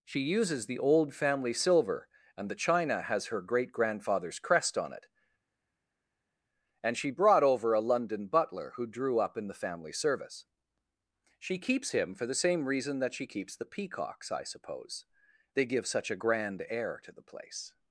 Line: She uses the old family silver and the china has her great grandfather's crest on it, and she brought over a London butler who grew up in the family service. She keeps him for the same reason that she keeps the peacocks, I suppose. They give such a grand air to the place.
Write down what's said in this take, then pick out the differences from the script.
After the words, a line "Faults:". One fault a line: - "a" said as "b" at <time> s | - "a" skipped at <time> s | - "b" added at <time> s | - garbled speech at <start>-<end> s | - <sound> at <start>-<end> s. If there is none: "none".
She uses the old family silver and the china has her great grandfather's crest on it, and she brought over a London butler who drew up in the family service. She keeps him for the same reason that she keeps the peacocks, I suppose. They give such a grand air to the place.
Faults:
- "grew" said as "drew" at 8.8 s